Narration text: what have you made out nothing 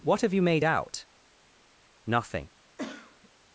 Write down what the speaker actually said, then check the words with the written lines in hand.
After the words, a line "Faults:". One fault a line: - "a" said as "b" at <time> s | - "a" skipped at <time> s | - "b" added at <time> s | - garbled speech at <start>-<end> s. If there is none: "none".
what have you made out nothing
Faults:
none